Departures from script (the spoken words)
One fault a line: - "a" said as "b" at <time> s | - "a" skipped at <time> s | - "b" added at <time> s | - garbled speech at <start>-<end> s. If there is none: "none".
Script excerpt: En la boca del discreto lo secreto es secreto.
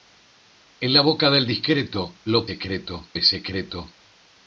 none